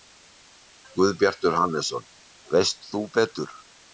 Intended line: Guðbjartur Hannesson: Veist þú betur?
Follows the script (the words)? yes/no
yes